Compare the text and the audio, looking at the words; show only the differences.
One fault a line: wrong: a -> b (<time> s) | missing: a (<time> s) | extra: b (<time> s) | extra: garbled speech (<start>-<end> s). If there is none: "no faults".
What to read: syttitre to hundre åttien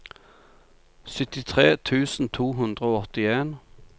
extra: tusen (1.8 s)
extra: og (2.9 s)